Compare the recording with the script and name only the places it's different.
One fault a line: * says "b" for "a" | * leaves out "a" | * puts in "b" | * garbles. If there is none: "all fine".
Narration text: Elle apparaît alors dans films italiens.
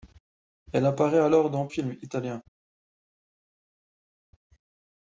all fine